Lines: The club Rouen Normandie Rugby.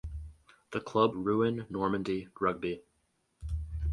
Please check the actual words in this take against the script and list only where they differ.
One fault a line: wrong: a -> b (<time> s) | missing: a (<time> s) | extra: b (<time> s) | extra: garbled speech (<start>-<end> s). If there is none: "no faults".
no faults